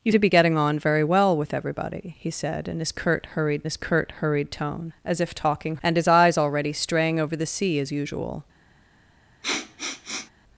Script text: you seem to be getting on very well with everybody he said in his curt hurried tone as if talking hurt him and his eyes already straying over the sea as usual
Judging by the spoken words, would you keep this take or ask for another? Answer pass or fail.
fail